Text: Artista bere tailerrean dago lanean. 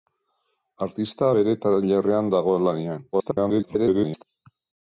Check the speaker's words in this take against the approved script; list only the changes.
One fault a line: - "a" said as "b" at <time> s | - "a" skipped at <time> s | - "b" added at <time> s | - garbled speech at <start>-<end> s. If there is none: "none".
- garbled speech at 3.1-4.2 s